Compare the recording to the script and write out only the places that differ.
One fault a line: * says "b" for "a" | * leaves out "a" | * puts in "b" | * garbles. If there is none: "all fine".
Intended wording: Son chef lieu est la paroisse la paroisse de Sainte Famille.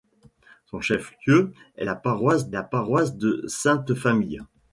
all fine